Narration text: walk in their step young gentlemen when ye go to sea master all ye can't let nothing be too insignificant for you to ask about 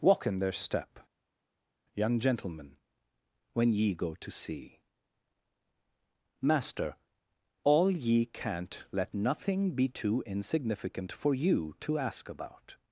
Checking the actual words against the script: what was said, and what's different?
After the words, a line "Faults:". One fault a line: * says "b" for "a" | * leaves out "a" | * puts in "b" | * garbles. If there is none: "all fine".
walk in their step young gentlemen when ye go to sea master all ye can't let nothing be too insignificant for you to ask about
Faults:
all fine